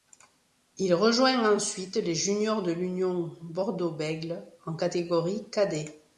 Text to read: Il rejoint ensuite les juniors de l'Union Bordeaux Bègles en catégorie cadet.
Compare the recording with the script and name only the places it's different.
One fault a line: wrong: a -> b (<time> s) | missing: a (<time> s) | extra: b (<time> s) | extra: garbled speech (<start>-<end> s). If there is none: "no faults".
no faults